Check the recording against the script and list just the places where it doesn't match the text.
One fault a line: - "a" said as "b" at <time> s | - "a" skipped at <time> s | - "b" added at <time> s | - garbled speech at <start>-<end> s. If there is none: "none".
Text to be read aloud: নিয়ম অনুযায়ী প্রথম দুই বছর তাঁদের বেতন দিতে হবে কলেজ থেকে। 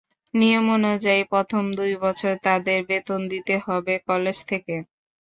none